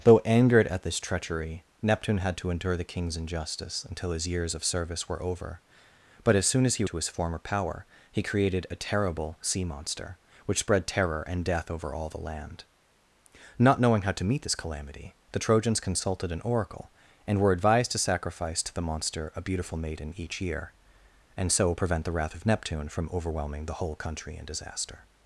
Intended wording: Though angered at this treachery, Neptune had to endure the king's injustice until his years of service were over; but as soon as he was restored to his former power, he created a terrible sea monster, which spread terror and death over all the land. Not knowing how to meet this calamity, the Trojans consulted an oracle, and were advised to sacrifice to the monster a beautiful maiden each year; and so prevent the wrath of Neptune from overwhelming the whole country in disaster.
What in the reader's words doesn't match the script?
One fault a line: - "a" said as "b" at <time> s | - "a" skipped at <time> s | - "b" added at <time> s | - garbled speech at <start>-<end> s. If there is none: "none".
- "was restored" skipped at 6.8 s